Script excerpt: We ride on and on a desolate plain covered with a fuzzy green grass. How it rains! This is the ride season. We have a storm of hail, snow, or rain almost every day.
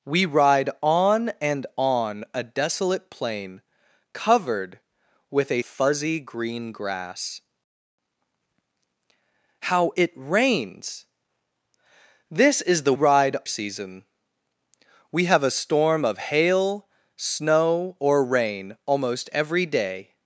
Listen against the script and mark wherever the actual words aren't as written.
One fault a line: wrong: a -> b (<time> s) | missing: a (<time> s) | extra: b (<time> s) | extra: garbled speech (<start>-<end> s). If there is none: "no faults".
no faults